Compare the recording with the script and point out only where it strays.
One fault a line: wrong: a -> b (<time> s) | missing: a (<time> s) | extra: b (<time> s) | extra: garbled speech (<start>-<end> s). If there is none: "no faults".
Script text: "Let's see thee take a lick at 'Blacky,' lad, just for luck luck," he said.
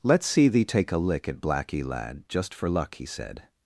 missing: luck (3.0 s)